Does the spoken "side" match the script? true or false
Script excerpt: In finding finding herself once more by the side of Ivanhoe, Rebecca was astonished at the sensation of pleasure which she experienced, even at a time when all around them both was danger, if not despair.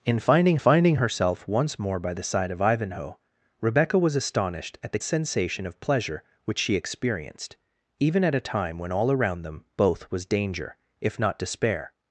true